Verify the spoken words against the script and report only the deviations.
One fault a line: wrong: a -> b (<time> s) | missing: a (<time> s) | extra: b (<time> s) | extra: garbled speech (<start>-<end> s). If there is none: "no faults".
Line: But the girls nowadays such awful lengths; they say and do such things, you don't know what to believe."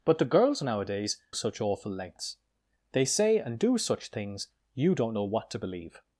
no faults